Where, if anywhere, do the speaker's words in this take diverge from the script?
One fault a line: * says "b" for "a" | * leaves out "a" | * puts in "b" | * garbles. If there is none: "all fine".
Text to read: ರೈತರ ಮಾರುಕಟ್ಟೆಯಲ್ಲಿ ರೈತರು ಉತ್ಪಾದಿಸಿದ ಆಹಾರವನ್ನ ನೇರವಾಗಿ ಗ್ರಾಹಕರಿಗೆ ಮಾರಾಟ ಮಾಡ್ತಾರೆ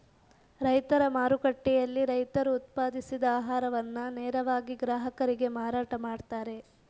all fine